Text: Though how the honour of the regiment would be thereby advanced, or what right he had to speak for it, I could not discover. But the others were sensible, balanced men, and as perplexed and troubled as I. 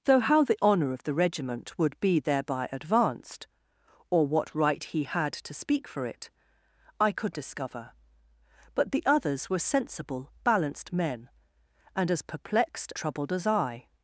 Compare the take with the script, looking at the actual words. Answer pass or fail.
fail